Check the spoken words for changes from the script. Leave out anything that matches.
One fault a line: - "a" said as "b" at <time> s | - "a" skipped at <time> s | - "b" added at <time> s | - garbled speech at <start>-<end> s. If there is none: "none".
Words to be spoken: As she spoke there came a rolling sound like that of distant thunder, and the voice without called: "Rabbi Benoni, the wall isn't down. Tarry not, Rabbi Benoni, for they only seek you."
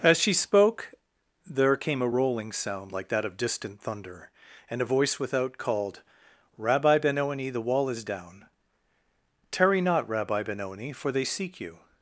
- "the" said as "a" at 4.8 s
- "isn't" said as "is" at 7.9 s
- "only" skipped at 11.2 s